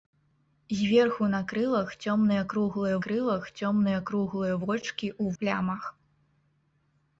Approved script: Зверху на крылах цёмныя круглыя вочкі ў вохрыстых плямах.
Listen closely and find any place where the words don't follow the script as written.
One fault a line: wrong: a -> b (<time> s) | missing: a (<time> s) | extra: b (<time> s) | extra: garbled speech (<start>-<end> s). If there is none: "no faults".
extra: крылах цёмныя круглыя (3.0 s)
missing: вохрыстых (5.2 s)